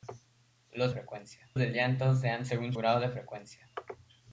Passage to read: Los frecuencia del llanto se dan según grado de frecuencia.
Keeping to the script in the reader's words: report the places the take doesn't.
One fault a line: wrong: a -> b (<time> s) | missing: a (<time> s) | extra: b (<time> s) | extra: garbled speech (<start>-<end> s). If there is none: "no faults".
no faults